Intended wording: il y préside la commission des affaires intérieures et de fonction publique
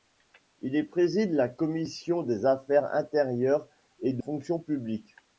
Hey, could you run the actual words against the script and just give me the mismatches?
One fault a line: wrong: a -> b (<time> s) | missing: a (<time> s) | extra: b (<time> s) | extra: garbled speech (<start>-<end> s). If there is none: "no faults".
no faults